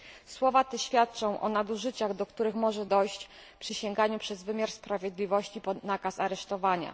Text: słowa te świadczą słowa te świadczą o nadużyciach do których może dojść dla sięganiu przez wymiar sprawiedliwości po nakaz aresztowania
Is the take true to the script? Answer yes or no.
no